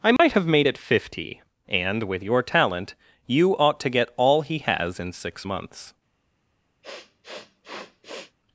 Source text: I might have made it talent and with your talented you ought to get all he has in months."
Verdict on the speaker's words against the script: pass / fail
fail